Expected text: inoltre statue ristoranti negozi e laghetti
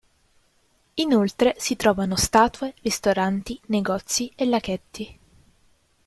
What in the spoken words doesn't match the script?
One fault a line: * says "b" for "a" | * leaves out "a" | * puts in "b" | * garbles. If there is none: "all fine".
* puts in "si trovano"